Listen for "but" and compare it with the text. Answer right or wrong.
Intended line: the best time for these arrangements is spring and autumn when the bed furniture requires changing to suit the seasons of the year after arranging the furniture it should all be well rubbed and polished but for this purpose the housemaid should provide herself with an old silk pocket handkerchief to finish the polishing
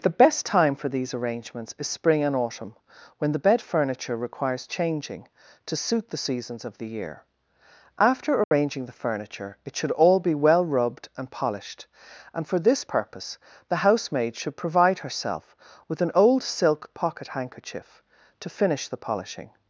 wrong